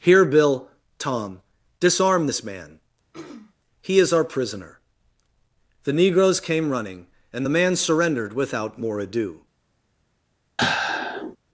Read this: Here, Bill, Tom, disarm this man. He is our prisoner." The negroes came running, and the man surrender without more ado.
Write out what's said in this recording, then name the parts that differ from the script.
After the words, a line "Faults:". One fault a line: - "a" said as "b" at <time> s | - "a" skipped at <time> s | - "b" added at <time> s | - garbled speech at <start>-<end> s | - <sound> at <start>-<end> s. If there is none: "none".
Here, Bill, Tom, disarm this man. He is our prisoner." The negroes came running, and the man surrendered without more ado.
Faults:
- throat clearing at 3.1-3.5 s
- "surrender" said as "surrendered" at 7.8 s
- sigh at 10.6-11.4 s